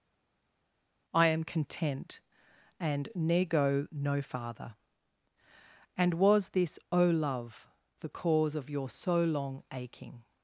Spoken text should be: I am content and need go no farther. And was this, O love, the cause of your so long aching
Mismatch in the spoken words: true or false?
true